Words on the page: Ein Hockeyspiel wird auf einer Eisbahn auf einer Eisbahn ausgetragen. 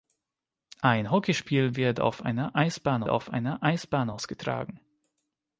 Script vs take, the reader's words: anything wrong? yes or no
no